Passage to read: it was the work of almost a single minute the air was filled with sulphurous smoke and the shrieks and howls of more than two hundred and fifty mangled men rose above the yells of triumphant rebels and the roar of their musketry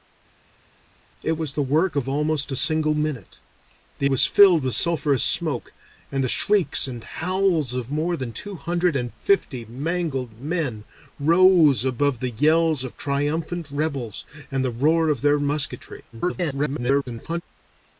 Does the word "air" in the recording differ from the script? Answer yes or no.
yes